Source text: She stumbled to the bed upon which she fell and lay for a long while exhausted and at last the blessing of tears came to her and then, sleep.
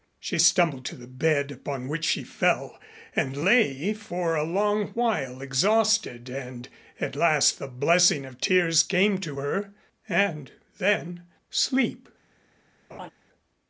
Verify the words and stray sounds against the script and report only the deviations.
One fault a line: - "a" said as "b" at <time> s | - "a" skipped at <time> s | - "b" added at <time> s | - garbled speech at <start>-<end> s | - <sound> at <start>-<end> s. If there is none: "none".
- laugh at 12.9-13.1 s